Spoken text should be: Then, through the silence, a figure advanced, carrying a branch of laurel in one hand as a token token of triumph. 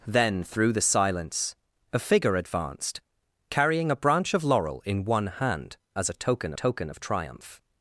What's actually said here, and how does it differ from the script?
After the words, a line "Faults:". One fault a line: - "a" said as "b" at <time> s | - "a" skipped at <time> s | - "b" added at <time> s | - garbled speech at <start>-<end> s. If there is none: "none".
Then, through the silence, a figure advanced, carrying a branch of laurel in one hand as a token token of triumph.
Faults:
none